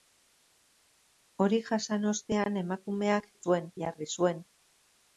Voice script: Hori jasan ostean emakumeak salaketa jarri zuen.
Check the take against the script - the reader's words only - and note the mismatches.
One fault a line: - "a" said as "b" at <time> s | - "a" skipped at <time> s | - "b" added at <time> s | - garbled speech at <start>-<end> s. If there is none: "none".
- "salaketa" said as "zuen" at 3.4 s